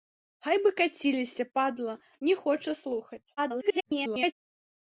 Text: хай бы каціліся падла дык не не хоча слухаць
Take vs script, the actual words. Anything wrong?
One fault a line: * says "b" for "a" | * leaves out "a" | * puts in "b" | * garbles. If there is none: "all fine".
* leaves out "дык не"
* garbles